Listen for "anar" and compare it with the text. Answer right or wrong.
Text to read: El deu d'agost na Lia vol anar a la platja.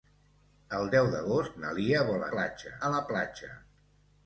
wrong